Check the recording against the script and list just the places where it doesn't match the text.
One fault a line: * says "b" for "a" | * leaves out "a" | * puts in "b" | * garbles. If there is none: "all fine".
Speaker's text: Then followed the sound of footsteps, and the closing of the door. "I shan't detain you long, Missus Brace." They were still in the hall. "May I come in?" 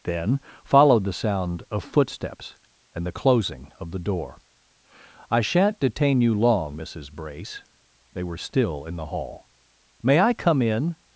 all fine